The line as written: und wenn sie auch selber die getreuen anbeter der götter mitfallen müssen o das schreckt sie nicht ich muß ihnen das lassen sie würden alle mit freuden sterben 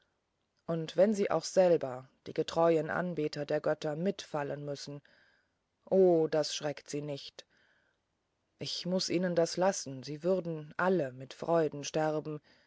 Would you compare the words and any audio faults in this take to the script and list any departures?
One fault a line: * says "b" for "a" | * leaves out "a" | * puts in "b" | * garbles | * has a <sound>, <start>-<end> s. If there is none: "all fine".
all fine